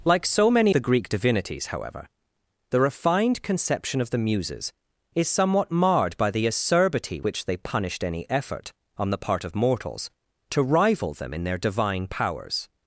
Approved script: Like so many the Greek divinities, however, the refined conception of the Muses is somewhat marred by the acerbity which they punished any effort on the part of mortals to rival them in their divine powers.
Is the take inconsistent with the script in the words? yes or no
no